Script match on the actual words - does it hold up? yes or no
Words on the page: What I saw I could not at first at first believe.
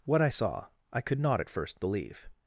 no